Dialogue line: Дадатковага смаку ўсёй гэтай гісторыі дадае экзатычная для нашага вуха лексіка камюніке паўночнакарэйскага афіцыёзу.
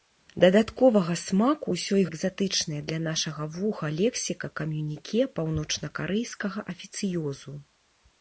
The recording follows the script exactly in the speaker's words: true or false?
false